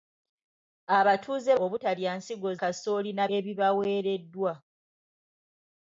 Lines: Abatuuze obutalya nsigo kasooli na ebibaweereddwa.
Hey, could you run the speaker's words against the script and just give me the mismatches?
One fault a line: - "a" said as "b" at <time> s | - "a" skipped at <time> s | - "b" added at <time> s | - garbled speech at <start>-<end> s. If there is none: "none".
none